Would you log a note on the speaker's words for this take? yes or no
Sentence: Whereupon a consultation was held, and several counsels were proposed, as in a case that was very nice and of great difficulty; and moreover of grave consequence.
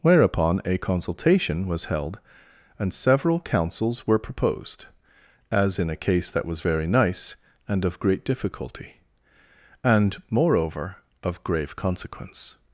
no